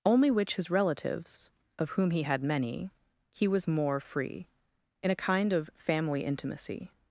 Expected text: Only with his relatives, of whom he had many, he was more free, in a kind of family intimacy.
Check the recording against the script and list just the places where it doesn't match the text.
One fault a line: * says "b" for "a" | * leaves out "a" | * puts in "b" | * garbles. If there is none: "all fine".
* says "which" for "with"